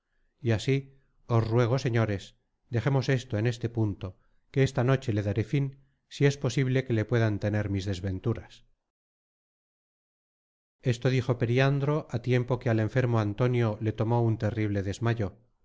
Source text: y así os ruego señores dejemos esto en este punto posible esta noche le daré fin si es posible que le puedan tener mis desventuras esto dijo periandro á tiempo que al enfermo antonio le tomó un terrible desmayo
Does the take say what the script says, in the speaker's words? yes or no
no